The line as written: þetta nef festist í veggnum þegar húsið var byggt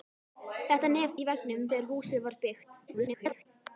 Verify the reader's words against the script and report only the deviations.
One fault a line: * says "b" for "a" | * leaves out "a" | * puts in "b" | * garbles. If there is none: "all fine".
* leaves out "festist"
* garbles